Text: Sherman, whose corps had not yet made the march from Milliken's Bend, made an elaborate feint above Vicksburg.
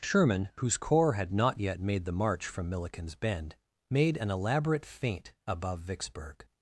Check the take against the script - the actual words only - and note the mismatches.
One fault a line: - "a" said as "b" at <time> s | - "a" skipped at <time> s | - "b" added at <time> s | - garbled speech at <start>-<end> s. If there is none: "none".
none